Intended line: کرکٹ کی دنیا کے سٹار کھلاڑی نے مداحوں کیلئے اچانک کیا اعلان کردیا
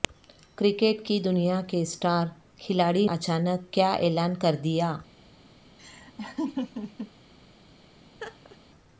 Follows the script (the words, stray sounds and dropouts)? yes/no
no